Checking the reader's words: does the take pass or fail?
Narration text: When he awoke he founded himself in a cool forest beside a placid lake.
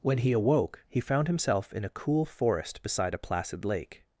fail